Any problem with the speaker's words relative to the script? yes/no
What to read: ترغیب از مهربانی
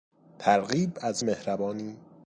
no